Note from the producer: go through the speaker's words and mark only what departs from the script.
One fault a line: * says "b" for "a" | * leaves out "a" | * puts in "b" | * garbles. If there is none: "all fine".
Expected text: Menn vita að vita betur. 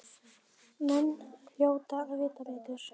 * says "hljóta" for "vita"